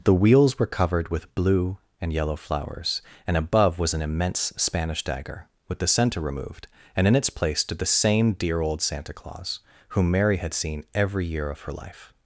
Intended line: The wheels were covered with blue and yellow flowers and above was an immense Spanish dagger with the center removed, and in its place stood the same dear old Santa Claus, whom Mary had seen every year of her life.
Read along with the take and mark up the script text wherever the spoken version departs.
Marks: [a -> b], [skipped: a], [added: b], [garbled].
The wheels were covered with blue and yellow flowers and above was an immense Spanish dagger with the center removed, and in its place stood the same dear old Santa Claus, whom Mary had seen every year of her life.